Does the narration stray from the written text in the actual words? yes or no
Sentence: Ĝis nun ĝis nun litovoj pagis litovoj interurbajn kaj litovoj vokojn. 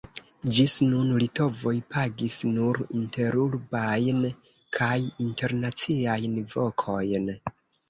yes